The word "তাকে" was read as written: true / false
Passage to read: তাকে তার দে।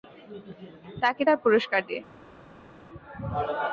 true